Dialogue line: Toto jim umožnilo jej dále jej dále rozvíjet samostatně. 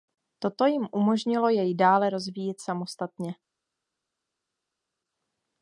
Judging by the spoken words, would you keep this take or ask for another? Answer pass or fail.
fail